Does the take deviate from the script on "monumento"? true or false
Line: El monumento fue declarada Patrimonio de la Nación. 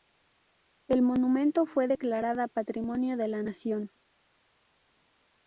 false